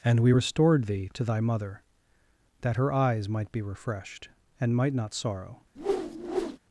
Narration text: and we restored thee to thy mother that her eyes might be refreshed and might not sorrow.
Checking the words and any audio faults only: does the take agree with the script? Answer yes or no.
no